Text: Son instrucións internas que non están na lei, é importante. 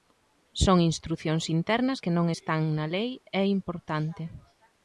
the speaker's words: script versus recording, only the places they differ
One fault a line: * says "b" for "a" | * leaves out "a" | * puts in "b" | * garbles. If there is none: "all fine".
all fine